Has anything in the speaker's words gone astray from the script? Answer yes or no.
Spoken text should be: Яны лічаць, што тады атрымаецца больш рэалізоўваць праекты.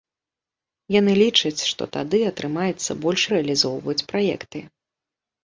no